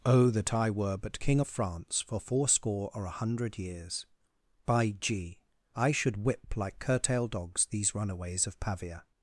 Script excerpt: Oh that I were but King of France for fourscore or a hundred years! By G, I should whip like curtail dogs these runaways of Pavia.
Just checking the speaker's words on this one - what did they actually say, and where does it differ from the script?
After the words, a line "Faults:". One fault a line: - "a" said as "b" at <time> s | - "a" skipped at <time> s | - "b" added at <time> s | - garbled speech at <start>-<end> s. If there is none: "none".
Oh that I were but King of France for fourscore or a hundred years! By G, I should whip like curtail dogs these runaways of Pavia.
Faults:
none